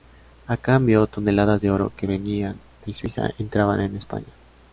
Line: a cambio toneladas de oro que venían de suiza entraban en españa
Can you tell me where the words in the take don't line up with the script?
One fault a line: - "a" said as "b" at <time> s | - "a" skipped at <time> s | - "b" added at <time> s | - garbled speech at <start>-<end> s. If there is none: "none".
none